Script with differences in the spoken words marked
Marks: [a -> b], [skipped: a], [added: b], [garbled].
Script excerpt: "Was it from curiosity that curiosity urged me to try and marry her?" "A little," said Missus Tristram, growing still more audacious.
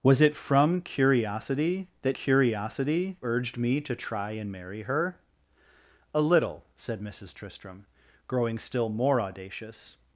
"Was it from curiosity that curiosity urged me to try and marry her?" "A little," said Missus Tristram, growing still more audacious.